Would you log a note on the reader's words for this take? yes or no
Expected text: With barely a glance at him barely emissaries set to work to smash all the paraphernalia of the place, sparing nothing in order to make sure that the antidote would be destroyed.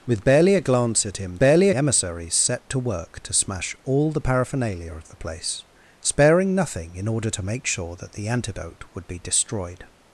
no